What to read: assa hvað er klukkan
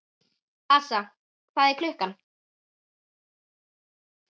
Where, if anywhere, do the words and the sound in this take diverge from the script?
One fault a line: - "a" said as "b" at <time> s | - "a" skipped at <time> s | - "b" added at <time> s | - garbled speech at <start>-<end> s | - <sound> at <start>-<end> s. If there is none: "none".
none